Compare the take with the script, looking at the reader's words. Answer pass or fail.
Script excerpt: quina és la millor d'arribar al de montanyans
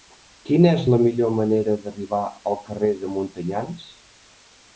fail